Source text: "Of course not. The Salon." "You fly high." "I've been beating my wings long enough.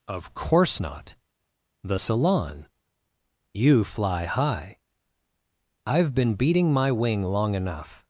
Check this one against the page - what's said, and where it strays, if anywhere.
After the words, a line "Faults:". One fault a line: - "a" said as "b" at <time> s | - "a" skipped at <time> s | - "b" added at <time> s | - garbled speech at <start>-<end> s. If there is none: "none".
"Of course not. The Salon." "You fly high." "I've been beating my wing long enough.
Faults:
- "wings" said as "wing" at 6.9 s